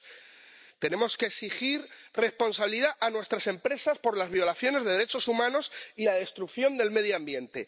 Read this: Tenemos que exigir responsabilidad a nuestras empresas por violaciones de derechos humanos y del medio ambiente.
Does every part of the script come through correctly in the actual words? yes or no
no